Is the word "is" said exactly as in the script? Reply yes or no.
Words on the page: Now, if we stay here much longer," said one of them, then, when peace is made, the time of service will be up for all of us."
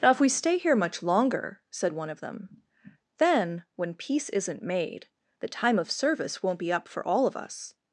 no